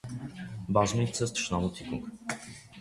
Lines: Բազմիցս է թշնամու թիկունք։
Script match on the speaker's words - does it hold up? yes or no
yes